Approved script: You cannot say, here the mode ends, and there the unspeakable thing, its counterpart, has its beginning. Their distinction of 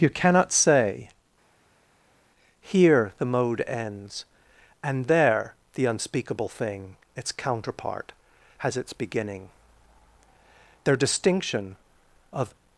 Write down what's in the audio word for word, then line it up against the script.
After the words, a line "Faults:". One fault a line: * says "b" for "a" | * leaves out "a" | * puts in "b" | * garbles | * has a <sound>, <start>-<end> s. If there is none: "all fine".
You cannot say, here the mode ends, and there the unspeakable thing, its counterpart, has its beginning. Their distinction of
Faults:
all fine